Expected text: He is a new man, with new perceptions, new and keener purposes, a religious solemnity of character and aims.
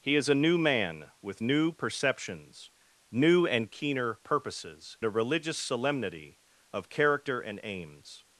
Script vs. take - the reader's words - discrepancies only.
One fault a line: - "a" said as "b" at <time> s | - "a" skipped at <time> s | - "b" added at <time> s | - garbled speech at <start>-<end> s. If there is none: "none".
none